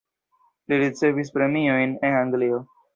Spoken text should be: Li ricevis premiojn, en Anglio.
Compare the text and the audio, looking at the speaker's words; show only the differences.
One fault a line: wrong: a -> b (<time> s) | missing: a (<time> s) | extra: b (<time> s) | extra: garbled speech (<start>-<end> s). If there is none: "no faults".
no faults